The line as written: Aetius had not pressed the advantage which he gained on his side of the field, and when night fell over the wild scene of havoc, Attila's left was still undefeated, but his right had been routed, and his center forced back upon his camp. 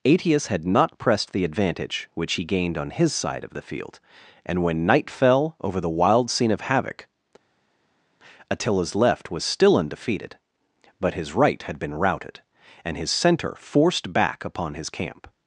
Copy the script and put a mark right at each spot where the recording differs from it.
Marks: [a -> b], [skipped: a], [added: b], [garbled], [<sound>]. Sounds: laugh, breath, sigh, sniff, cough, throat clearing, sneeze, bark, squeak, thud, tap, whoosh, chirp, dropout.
Aetius had not pressed the advantage which he gained on his side of the field, and when night fell over the wild scene of havoc, Attila's left was still undefeated, but his right had been routed, and his center forced back upon his camp.